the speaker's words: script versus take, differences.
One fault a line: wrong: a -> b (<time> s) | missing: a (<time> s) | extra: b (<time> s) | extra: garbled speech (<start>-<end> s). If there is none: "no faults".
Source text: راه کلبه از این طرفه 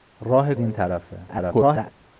missing: کلبه از (0.6 s)
extra: garbled speech (1.3-1.9 s)